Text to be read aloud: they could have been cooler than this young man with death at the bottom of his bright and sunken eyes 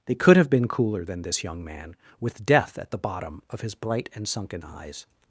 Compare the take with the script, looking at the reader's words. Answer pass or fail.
pass